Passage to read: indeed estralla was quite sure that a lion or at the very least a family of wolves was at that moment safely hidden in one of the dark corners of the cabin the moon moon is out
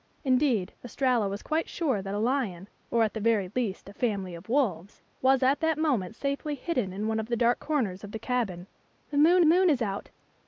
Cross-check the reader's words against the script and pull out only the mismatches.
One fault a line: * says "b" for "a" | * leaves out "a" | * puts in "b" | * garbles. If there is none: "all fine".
all fine